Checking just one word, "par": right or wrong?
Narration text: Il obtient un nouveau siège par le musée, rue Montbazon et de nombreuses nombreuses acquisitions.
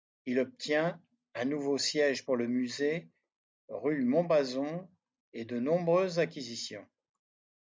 wrong